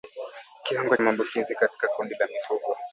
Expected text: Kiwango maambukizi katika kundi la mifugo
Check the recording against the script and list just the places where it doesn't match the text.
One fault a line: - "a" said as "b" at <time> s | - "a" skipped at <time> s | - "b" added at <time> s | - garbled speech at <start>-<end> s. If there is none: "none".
none